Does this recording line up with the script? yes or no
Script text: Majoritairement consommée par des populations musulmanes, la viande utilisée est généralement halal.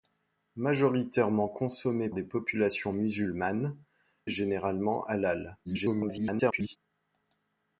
no